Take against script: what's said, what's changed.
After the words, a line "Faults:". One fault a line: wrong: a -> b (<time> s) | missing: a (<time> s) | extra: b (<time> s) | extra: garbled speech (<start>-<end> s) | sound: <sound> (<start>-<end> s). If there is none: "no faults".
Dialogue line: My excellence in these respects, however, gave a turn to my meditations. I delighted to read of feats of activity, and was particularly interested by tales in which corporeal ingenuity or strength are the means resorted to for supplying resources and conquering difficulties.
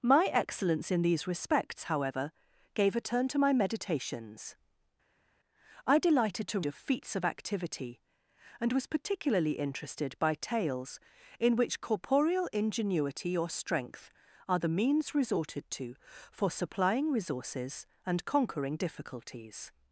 My excellence in these respects, however, gave a turn to my meditations. I delighted to of feats of activity, and was particularly interested by tales in which corporeal ingenuity or strength are the means resorted to for supplying resources and conquering difficulties.
Faults:
missing: read (6.6 s)